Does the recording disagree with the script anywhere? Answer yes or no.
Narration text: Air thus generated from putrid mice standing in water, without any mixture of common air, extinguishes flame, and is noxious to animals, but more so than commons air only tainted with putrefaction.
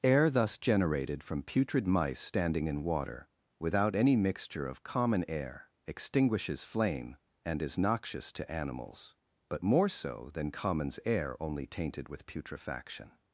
no